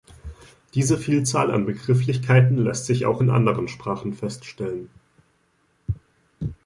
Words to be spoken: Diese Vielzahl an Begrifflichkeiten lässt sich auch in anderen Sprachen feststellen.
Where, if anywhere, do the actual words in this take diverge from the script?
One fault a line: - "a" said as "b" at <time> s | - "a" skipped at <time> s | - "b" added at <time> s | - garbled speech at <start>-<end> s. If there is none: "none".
none